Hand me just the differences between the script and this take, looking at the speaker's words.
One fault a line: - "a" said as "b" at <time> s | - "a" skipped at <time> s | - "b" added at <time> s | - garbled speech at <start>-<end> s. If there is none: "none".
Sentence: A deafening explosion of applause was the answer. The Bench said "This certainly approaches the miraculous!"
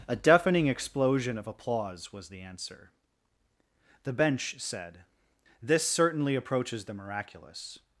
none